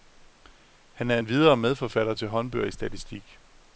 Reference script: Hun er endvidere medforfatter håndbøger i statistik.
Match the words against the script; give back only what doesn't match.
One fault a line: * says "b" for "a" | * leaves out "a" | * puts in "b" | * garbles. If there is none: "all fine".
* says "Han" for "Hun"
* puts in "til"